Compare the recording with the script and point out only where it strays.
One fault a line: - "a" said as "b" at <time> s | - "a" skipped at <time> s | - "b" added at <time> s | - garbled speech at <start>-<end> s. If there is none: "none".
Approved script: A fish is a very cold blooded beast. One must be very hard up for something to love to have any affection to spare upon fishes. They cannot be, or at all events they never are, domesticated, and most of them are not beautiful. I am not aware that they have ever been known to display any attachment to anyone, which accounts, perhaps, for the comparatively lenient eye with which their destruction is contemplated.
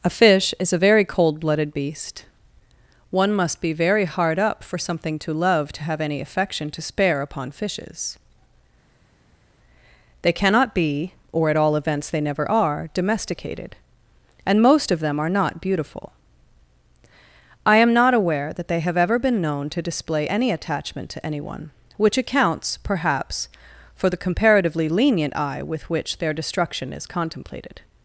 none